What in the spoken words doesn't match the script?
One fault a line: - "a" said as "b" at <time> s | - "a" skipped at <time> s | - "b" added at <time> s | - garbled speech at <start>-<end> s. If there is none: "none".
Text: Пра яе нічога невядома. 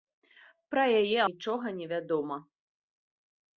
none